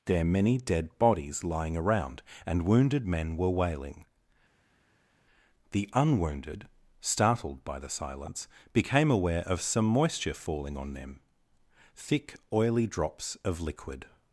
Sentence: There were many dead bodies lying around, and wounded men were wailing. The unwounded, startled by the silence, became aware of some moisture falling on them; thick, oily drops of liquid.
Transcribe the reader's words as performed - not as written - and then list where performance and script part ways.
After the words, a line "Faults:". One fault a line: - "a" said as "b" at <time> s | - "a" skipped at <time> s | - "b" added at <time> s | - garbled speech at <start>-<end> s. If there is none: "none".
There many dead bodies lying around, and wounded men were wailing. The unwounded, startled by the silence, became aware of some moisture falling on them; thick, oily drops of liquid.
Faults:
- "were" skipped at 0.2 s